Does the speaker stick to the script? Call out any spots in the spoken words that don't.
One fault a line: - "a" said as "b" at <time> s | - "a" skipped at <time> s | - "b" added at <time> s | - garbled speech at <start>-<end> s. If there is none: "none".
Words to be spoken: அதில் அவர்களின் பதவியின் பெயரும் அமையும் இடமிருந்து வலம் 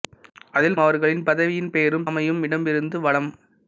none